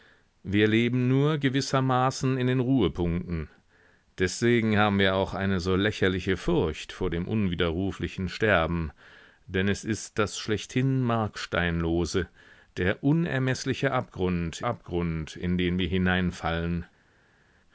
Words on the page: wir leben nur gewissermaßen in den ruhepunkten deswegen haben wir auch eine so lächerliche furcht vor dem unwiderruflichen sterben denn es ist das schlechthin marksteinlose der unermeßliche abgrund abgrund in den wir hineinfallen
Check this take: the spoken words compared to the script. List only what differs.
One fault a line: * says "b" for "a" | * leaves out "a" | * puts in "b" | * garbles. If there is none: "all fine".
all fine